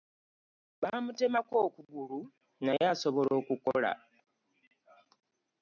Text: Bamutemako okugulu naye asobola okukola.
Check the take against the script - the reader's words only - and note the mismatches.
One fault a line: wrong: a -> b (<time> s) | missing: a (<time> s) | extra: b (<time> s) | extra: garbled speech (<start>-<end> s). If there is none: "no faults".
no faults